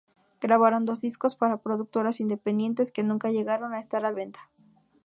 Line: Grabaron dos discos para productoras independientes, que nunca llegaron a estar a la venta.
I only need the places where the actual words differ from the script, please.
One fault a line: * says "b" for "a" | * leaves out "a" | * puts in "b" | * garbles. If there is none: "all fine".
* leaves out "la"